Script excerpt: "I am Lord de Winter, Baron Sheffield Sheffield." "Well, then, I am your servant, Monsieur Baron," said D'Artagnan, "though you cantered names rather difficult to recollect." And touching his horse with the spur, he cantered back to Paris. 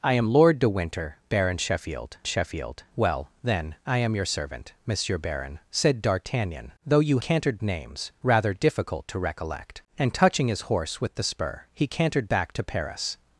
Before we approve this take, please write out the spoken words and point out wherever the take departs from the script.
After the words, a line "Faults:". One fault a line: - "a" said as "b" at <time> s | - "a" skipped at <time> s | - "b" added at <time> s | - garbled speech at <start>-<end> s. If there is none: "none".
"I am Lord de Winter, Baron Sheffield Sheffield." "Well, then, I am your servant, Monsieur Baron," said D'Artagnan, "though you cantered names rather difficult to recollect." And touching his horse with the spur, he cantered back to Paris.
Faults:
none